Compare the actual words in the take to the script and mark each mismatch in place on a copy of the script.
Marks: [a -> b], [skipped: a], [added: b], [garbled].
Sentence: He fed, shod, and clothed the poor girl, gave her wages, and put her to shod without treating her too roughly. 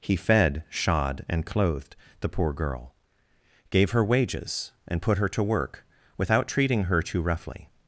He fed, shod, and clothed the poor girl, gave her wages, and put her to [shod -> work] without treating her too roughly.